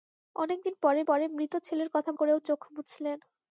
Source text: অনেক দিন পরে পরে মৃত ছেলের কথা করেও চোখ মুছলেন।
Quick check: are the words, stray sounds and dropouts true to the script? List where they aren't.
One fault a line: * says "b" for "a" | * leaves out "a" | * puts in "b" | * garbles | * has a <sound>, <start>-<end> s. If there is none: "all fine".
all fine